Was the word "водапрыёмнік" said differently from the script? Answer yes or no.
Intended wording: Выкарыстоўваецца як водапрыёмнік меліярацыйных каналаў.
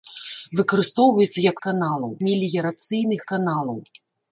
yes